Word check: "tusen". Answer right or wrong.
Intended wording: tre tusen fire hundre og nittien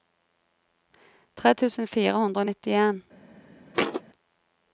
right